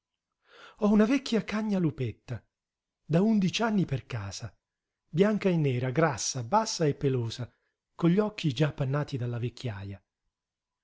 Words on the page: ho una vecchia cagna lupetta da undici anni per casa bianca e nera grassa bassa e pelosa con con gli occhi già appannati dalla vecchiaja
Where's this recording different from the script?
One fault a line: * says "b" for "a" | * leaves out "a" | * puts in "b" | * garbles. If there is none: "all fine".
* leaves out "con"